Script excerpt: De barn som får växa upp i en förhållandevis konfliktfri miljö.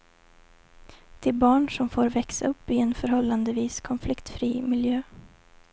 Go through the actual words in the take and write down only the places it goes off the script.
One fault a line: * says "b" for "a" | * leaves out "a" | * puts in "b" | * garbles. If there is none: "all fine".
all fine